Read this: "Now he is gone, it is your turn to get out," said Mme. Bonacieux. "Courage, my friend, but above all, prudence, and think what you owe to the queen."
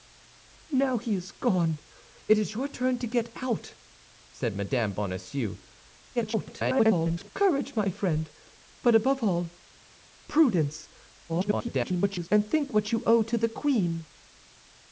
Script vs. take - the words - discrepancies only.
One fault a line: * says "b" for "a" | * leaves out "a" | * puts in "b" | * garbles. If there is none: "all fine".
* garbles
* garbles